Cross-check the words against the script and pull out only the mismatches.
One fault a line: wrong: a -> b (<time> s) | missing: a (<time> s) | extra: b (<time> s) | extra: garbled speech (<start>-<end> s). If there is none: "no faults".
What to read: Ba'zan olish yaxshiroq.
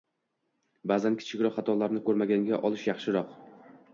extra: kichikroq xatolarni ko‘rmaganga (1.2 s)